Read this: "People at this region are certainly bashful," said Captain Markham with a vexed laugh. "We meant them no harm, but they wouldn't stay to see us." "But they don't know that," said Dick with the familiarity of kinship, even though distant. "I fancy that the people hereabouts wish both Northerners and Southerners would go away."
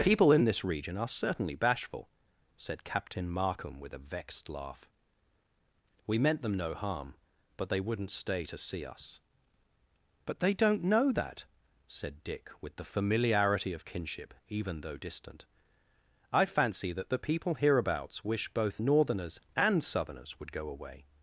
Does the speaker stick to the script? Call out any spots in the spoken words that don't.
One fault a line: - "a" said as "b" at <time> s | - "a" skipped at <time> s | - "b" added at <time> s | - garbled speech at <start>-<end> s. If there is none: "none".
- "at" said as "in" at 0.3 s